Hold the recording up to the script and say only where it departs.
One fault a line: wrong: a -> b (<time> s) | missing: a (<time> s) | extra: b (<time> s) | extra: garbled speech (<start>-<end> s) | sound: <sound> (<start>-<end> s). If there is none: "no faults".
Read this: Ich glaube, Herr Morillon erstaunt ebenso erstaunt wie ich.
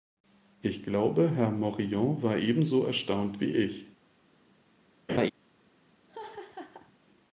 wrong: erstaunt -> war (2.2 s)
sound: laugh (5.1-5.3 s)
sound: laugh (6.1-6.9 s)